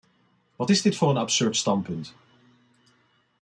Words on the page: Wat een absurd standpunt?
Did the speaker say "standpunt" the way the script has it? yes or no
yes